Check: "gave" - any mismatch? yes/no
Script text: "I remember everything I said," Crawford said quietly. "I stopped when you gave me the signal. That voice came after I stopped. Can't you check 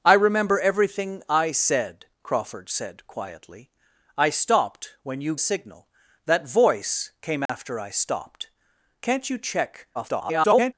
yes